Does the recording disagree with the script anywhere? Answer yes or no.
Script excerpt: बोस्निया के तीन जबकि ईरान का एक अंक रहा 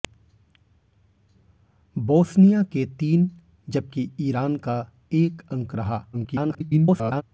yes